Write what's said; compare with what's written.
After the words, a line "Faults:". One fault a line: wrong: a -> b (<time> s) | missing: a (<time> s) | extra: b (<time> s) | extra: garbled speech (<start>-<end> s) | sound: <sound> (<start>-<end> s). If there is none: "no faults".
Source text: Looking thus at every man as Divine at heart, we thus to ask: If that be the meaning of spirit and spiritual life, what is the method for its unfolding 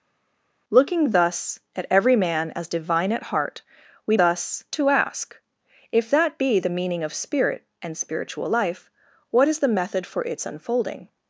Looking thus at every man as Divine at heart, we thus to ask: If that be the meaning of spirit and spiritual life, what is the method for its unfolding
Faults:
no faults